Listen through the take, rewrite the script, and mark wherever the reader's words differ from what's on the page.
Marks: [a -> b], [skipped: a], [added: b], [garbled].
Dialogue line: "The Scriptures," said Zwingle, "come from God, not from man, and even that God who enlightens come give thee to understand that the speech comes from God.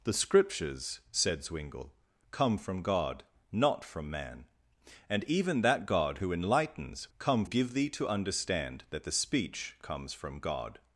"The Scriptures," said Zwingle, "come from God, not from man, and even that God who enlightens come give thee to understand that the speech comes from God.